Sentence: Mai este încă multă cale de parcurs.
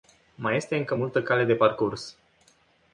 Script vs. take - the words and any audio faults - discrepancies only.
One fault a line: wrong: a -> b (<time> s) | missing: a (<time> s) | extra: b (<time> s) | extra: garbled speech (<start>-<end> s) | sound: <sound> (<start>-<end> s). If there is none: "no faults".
no faults